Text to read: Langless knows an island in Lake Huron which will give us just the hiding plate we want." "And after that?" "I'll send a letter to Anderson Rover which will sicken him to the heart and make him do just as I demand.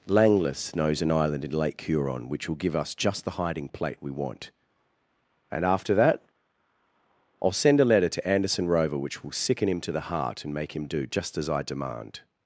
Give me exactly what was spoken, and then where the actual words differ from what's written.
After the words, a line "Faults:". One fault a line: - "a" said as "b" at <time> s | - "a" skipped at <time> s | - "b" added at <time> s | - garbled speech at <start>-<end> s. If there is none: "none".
Langless knows an island in Lake Huron which will give us just the hiding plate we want." "And after that?" "I'll send a letter to Anderson Rover which will sicken him to the heart and make him do just as I demand.
Faults:
none